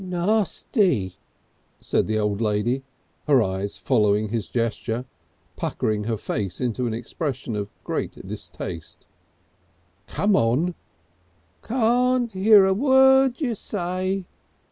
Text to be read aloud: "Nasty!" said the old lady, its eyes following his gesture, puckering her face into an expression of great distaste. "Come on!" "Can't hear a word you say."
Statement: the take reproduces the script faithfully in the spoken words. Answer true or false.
false